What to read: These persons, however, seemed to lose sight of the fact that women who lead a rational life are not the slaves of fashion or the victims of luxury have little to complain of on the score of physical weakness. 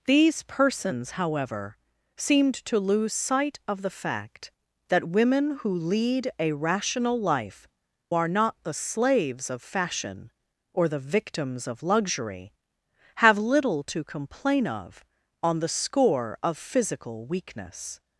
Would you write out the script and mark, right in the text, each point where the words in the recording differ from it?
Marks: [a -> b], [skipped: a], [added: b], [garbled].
These persons, however, seemed to lose sight of the fact that women who lead a rational life are not the slaves of fashion or the victims of luxury have little to complain of on the score of physical weakness.